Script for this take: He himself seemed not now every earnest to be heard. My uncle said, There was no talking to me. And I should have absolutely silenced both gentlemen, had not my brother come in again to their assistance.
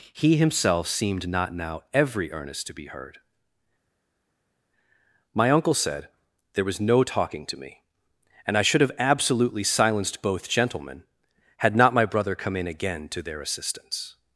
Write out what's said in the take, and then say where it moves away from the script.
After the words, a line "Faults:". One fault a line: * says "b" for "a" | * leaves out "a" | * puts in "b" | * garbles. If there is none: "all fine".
He himself seemed not now every earnest to be heard. My uncle said, There was no talking to me. And I should have absolutely silenced both gentlemen, had not my brother come in again to their assistance.
Faults:
all fine